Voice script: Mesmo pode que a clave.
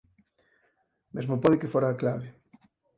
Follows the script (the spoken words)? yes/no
no